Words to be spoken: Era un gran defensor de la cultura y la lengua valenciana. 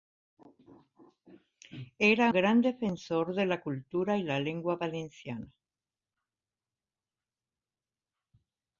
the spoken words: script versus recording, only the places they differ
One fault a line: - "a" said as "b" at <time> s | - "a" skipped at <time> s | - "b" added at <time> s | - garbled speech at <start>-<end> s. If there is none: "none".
- "un" skipped at 2.3 s